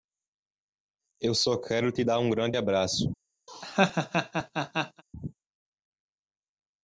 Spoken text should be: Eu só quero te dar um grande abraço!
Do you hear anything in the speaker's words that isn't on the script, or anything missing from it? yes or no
no